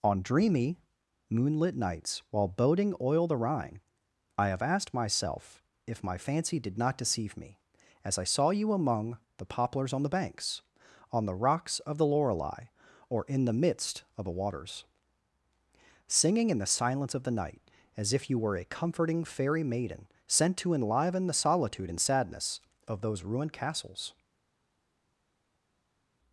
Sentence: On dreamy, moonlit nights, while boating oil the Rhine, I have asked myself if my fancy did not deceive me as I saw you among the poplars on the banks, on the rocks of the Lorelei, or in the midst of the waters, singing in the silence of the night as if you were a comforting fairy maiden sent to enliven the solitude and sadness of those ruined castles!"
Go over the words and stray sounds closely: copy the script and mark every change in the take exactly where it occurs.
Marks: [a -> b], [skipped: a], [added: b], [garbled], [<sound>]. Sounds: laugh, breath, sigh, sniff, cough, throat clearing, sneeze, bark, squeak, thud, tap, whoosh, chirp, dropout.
On dreamy, moonlit nights, while boating oil the Rhine, I have asked myself if my fancy did not deceive me as I saw you among the poplars on the banks, on the rocks of the Lorelei, or in the midst of the waters, singing in the silence of the night as if you were a comforting fairy maiden sent to enliven the solitude and sadness of those ruined castles!"